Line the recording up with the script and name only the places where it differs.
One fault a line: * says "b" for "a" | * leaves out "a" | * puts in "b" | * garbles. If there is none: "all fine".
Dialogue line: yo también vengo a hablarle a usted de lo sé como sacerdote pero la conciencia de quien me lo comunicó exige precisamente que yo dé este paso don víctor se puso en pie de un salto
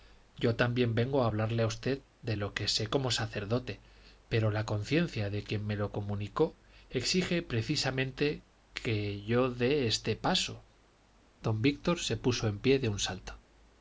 * puts in "que"